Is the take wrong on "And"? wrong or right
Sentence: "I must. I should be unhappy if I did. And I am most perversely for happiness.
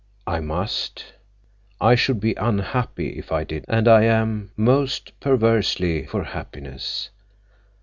right